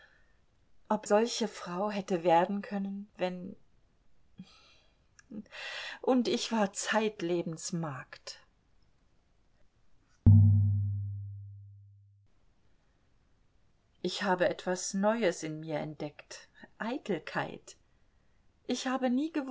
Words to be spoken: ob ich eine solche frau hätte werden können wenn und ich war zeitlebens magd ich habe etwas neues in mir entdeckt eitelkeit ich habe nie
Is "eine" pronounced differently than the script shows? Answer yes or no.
yes